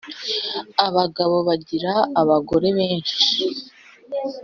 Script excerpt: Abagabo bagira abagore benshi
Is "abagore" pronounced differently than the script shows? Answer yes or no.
no